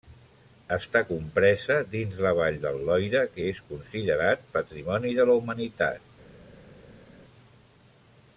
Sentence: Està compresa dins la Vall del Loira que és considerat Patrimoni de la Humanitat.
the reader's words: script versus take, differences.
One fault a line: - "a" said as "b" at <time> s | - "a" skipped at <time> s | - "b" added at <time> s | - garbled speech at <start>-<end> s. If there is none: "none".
none